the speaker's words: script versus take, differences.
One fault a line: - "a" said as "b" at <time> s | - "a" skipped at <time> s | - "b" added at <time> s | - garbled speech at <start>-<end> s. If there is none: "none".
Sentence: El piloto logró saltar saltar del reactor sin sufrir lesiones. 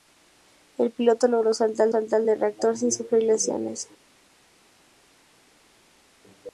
none